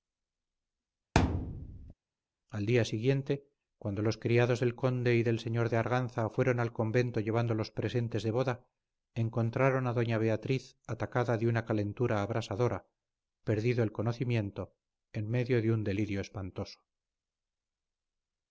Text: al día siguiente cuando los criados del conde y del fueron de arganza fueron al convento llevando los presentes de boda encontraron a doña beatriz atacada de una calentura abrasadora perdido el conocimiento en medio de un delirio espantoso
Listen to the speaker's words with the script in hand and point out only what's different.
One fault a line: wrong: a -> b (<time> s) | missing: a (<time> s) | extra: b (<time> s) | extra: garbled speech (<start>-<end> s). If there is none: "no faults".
wrong: fueron -> señor (5.4 s)